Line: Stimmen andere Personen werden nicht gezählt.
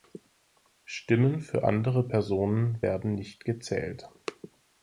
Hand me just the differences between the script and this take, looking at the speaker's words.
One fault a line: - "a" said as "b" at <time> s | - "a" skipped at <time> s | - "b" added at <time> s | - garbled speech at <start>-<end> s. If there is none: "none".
- "für" added at 1.4 s